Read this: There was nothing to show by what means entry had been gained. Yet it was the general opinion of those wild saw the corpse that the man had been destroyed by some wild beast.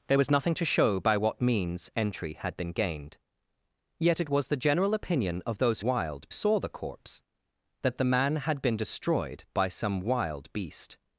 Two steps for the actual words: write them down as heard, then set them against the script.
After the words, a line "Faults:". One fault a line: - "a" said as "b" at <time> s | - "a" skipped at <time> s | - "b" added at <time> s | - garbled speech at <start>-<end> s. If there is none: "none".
There was nothing to show by what means entry had been gained. Yet it was the general opinion of those wild saw the corpse that the man had been destroyed by some wild beast.
Faults:
none